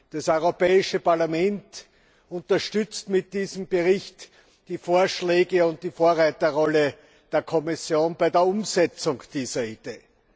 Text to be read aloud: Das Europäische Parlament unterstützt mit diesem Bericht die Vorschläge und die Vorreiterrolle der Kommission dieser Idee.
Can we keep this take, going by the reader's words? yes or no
no